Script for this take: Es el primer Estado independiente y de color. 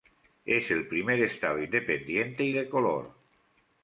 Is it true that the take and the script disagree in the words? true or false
false